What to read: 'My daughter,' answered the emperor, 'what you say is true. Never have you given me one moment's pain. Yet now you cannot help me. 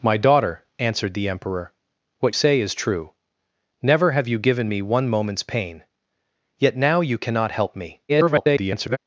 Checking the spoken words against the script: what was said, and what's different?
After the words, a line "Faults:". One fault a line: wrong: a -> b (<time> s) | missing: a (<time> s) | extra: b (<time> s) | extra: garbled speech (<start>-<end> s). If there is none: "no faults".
'My daughter,' answered the emperor, 'what say is true. Never have you given me one moment's pain. Yet now you cannot help me. [garbled]
Faults:
missing: you (2.4 s)
extra: garbled speech (8.1-9.0 s)